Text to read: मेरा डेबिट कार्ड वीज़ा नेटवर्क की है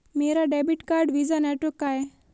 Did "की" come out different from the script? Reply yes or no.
yes